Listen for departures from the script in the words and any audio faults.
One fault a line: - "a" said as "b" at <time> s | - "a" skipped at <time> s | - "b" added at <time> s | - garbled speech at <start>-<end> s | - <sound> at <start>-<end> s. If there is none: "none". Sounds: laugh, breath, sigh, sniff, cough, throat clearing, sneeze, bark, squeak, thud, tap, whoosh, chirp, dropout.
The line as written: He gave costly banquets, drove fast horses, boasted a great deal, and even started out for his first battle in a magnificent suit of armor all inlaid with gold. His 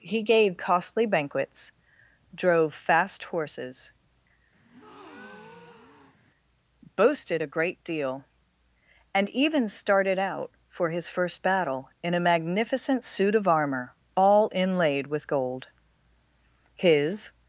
- breath at 4.6-6.2 s